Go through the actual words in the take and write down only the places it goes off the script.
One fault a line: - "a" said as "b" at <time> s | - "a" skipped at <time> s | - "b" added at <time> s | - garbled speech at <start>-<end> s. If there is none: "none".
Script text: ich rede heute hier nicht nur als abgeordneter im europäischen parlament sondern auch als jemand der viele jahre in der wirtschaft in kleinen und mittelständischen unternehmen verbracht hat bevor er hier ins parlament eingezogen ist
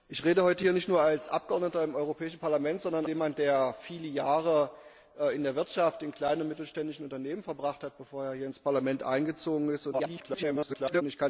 - "auch als" skipped at 3.0 s
- garbled speech at 9.9-11.0 s